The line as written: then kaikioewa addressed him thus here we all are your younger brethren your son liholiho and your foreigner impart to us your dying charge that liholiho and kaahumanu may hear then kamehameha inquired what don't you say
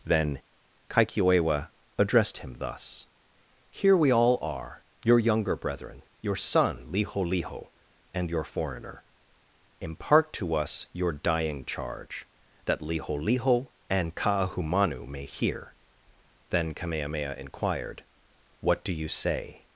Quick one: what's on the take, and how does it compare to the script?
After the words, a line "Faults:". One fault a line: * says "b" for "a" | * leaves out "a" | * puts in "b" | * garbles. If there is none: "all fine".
then kaikioewa addressed him thus here we all are your younger brethren your son liholiho and your foreigner impart to us your dying charge that liholiho and kaahumanu may hear then kamehameha inquired what do you say
Faults:
* says "do" for "don't"